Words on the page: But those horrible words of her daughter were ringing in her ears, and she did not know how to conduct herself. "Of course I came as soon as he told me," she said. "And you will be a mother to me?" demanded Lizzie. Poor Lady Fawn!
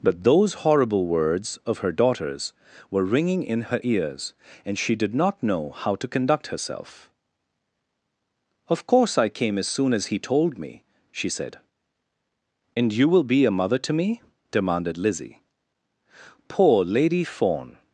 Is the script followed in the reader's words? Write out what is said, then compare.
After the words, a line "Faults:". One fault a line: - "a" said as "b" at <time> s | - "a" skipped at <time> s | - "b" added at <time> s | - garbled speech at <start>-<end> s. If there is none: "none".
But those horrible words of her daughters were ringing in her ears, and she did not know how to conduct herself. "Of course I came as soon as he told me," she said. "And you will be a mother to me?" demanded Lizzie. Poor Lady Fawn!
Faults:
- "daughter" said as "daughters" at 1.9 s